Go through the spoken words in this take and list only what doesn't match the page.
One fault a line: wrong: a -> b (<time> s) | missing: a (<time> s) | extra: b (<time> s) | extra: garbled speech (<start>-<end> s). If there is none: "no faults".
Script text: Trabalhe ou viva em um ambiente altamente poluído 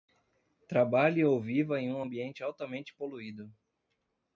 no faults